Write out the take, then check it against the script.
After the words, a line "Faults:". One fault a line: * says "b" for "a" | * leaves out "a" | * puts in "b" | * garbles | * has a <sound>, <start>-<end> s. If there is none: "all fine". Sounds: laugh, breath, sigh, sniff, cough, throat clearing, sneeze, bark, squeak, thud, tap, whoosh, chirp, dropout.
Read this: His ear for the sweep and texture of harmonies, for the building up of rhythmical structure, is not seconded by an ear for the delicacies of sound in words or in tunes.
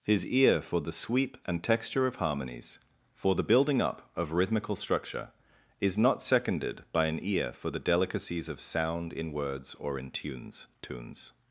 His ear for the sweep and texture of harmonies, for the building up of rhythmical structure, is not seconded by an ear for the delicacies of sound in words or in tunes tunes.
Faults:
* puts in "tunes"